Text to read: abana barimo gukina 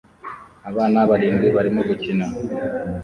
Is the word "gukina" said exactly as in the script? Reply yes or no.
yes